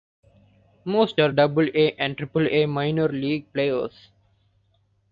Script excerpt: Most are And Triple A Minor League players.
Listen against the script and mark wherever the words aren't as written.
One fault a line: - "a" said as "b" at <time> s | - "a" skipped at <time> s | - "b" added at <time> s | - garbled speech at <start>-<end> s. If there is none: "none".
- "Double A" added at 1.3 s